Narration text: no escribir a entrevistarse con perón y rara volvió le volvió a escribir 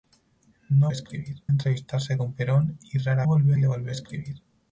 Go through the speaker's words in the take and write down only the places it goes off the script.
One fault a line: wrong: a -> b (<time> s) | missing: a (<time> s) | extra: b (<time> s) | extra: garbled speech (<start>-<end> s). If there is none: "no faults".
no faults